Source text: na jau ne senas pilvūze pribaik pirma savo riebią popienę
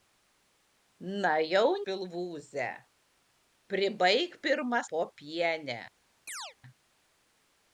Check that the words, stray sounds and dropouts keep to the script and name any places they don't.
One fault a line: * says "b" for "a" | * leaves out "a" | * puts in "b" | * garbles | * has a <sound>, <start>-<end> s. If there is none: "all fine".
* leaves out "ne senas"
* leaves out "savo riebią"
* has a chirp, 6.3-6.6 s